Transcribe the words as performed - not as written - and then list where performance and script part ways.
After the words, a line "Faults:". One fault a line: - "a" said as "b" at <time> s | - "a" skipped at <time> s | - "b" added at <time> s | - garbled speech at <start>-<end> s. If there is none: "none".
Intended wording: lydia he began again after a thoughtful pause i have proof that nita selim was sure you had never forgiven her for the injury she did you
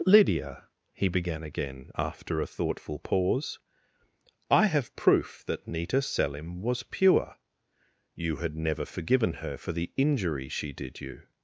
lydia he began again after a thoughtful pause i have proof that nita selim was pure you had never forgiven her for the injury she did you
Faults:
- "sure" said as "pure" at 6.8 s